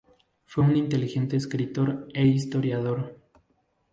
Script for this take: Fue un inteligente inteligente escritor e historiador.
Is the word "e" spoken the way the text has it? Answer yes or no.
yes